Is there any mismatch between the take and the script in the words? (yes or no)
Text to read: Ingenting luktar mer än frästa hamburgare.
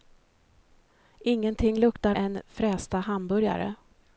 yes